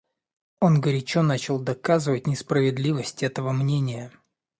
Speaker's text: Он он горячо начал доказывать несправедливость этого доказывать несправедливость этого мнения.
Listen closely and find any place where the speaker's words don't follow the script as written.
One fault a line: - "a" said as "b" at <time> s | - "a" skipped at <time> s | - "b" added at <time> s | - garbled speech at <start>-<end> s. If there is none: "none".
- "он" skipped at 0.8 s
- "доказывать несправедливость этого" skipped at 3.5 s